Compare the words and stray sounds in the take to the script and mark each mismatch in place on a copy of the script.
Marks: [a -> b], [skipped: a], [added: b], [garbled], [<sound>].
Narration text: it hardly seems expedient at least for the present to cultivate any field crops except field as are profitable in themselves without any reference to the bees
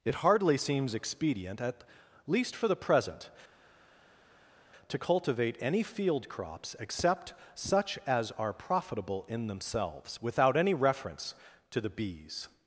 it hardly seems expedient at least for the present to cultivate any field crops except [field -> such] as are profitable in themselves without any reference to the bees